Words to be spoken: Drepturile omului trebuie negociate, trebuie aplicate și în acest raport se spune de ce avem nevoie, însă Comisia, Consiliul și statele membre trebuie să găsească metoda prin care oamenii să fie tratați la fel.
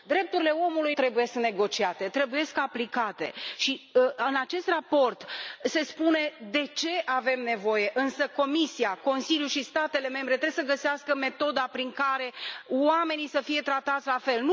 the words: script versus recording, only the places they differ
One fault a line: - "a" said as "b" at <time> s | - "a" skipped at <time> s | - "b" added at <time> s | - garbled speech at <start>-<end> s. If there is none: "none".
none